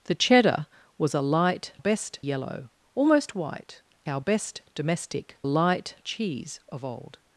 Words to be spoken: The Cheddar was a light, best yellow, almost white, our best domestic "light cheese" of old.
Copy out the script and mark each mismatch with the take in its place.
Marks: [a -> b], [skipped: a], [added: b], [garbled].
The Cheddar was a light, best yellow, almost white, our best domestic "light cheese" of old.